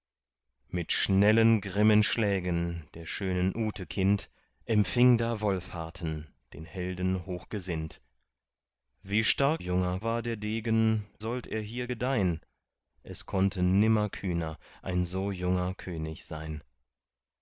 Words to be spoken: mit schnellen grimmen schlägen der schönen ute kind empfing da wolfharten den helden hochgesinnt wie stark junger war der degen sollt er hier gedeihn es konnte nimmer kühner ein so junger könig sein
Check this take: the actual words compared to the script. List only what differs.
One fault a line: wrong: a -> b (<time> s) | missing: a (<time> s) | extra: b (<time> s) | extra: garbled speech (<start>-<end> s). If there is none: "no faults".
no faults